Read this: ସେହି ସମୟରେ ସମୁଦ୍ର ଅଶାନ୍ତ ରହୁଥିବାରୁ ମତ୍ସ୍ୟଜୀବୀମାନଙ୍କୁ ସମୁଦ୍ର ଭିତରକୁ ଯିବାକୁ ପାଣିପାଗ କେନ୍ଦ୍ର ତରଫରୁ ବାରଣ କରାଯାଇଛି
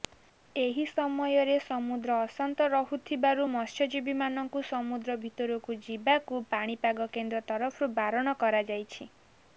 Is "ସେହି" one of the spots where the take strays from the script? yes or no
yes